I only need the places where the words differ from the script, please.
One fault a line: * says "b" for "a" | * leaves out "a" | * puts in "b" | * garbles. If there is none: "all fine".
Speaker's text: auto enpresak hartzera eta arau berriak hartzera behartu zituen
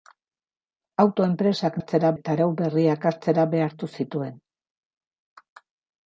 all fine